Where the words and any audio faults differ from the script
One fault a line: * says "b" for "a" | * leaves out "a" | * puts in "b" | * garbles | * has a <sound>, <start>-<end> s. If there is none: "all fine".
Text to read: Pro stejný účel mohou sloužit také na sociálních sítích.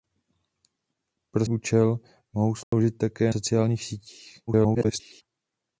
* leaves out "stejný"
* has a dropout, 2.6-2.7 s
* leaves out "na"
* garbles